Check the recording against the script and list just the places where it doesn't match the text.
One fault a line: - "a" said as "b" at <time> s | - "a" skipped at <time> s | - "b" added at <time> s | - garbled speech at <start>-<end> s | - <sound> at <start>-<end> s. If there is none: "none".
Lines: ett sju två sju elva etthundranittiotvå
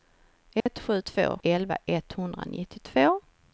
- dropout at 0.6-0.7 s
- "sju" skipped at 1.4 s